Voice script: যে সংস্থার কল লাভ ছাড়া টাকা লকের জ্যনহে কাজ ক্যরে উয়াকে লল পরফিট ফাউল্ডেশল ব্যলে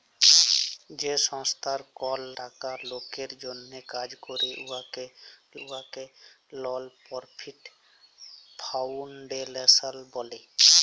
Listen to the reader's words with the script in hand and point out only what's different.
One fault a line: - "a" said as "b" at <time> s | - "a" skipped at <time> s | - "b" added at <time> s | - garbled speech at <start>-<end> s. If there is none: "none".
- "লাভ ছাড়া" skipped at 2.2 s
- "উয়াকে" added at 5.6 s